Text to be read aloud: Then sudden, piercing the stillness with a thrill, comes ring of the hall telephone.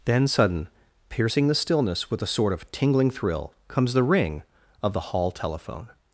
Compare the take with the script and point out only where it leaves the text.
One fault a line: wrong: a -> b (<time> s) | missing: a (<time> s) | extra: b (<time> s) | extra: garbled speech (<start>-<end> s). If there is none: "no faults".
extra: sort of tingling (2.3 s)
extra: the (3.9 s)